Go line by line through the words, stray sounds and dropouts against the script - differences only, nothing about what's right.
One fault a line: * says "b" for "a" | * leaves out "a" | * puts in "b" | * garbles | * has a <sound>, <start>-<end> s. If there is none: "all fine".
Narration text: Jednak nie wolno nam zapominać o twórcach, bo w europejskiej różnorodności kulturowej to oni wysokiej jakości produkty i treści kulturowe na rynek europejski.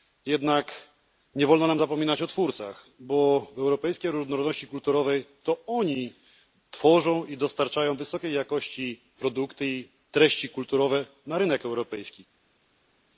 * puts in "tworzą i dostarczają"